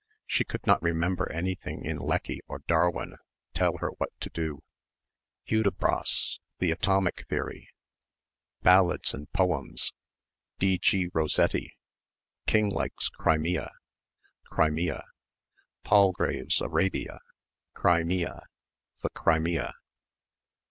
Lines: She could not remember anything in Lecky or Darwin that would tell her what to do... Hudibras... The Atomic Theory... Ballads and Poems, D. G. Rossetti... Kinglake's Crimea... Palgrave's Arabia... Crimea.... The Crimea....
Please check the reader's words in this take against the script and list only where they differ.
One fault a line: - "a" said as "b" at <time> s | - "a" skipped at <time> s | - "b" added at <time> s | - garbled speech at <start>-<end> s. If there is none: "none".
- "that would" skipped at 3.2 s
- "Crimea" added at 14.4 s